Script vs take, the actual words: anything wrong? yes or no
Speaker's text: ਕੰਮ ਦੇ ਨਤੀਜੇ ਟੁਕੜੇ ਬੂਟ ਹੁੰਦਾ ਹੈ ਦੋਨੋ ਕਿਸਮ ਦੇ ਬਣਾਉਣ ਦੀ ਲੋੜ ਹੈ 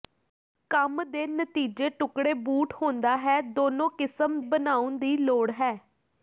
yes